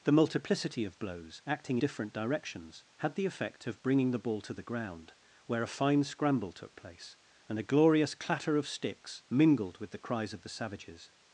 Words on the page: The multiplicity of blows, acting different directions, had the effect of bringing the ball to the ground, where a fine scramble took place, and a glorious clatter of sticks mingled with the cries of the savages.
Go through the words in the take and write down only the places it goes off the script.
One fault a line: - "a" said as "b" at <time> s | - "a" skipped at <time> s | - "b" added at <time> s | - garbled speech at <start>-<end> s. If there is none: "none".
none